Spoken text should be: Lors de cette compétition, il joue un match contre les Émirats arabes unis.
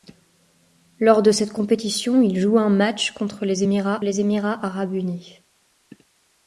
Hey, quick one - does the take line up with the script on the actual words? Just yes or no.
no